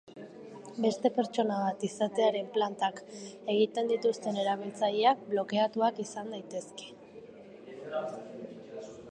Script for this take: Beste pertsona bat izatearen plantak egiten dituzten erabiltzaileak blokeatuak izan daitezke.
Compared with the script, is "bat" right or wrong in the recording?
right